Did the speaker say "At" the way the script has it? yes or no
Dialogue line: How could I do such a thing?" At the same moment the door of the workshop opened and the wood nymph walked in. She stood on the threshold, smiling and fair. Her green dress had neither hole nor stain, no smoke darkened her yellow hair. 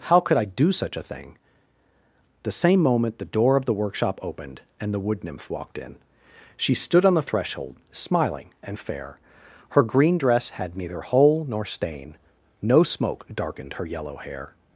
no